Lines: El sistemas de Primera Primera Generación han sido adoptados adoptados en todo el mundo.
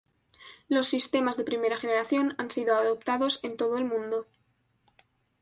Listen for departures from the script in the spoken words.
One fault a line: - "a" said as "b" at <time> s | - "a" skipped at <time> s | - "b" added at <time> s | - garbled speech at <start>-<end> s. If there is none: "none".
- "El" said as "Los" at 0.7 s
- "Primera" skipped at 1.8 s
- "adoptados" skipped at 3.4 s